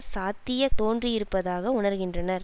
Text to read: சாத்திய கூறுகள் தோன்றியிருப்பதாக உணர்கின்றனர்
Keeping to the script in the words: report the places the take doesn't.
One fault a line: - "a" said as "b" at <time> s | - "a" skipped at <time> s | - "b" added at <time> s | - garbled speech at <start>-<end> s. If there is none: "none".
- "கூறுகள்" skipped at 0.7 s